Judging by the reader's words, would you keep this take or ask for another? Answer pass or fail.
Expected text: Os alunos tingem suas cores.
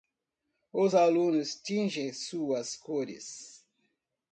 pass